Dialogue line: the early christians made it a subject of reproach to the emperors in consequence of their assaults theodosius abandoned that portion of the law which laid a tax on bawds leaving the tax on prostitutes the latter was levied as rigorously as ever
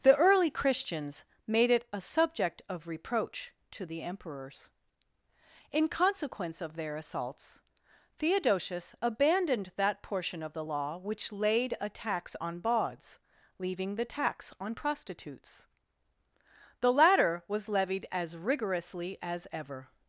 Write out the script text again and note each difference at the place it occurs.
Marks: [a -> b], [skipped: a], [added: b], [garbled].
the early christians made it a subject of reproach to the emperors in consequence of their assaults theodosius abandoned that portion of the law which laid a tax on bawds leaving the tax on prostitutes the latter was levied as rigorously as ever